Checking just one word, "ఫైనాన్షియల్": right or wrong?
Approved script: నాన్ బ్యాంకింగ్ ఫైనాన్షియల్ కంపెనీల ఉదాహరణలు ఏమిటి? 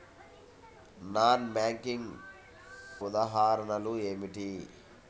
wrong